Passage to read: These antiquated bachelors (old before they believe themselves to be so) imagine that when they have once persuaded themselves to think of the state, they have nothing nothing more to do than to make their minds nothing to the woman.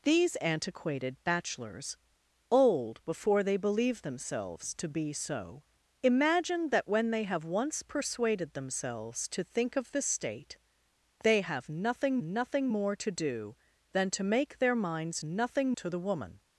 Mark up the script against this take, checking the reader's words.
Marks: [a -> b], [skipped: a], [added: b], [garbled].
These antiquated bachelors (old before they believe themselves to be so) imagine that when they have once persuaded themselves to think of the state, they have nothing nothing more to do than to make their minds nothing to the woman.